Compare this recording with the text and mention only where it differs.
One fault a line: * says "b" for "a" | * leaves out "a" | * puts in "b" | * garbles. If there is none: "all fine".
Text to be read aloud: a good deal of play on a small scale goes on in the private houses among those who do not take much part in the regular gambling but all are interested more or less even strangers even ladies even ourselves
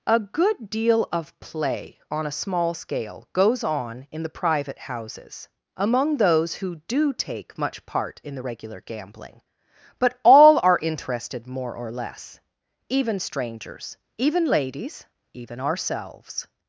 * leaves out "not"